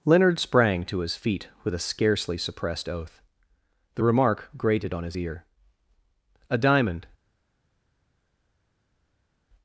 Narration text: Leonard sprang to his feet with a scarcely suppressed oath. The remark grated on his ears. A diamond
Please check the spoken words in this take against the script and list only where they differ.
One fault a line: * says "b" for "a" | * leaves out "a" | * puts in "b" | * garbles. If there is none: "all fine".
* says "ear" for "ears"